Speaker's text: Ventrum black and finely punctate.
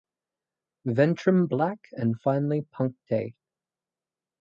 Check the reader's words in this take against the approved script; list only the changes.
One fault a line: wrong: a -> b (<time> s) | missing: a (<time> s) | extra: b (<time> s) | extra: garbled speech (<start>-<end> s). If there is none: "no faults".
no faults